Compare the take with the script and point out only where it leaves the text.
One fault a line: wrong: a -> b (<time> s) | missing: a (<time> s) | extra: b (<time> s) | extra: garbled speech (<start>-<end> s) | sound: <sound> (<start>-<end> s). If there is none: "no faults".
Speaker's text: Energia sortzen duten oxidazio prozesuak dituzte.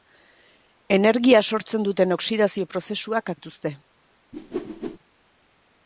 sound: whoosh (4.3-5.0 s)